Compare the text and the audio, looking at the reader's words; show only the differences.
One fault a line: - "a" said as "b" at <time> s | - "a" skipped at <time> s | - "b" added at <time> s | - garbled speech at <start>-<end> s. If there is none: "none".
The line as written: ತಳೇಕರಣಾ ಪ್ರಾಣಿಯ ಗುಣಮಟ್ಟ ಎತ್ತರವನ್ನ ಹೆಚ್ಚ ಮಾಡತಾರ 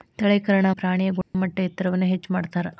none